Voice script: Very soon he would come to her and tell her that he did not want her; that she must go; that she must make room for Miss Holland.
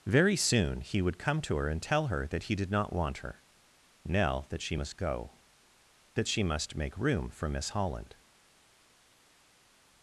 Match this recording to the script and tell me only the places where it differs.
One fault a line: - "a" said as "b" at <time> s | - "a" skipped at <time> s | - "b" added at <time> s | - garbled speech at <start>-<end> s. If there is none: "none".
- "nell" added at 4.0 s